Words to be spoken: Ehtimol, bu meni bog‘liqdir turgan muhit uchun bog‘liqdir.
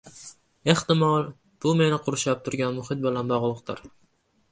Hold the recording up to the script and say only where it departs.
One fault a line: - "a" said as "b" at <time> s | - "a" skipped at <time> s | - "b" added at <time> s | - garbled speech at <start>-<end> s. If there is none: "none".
- "bog‘liqdir" said as "qurshab" at 2.1 s
- "uchun" said as "bilan" at 3.1 s